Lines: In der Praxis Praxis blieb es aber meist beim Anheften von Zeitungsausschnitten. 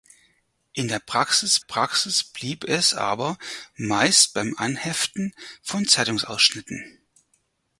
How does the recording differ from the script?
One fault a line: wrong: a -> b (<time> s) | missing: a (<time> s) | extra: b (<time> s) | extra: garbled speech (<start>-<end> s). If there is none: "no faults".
no faults